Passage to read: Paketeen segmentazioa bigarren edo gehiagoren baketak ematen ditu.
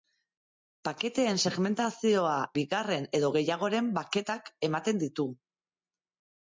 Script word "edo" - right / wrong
right